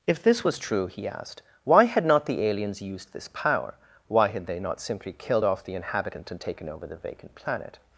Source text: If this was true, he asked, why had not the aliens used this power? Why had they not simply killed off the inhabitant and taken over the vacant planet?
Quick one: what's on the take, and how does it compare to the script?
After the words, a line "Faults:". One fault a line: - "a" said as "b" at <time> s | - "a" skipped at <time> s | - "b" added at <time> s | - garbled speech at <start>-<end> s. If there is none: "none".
If this was true, he asked, why had not the aliens used this power? Why had they not simply killed off the inhabitant and taken over the vacant planet?
Faults:
none